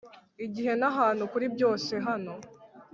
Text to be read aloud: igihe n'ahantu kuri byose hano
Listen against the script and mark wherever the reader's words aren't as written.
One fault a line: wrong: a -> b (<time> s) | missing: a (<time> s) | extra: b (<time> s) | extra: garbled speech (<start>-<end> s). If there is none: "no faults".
no faults